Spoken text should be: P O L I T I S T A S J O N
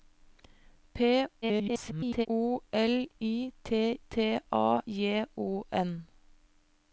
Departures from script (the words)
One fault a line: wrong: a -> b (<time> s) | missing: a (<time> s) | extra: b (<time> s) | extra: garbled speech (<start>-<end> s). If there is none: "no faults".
extra: garbled speech (1.4-2.3 s)
missing: I S (4.0 s)
missing: S (4.8 s)